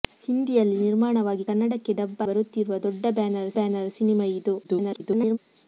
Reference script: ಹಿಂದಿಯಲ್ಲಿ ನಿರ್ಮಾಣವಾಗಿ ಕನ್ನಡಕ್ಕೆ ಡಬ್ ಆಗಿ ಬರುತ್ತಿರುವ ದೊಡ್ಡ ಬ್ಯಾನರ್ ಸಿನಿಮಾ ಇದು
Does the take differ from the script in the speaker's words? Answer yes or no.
yes